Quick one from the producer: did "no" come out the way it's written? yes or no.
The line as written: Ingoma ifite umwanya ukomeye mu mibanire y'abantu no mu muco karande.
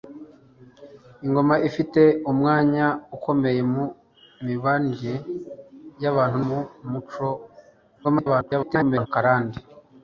no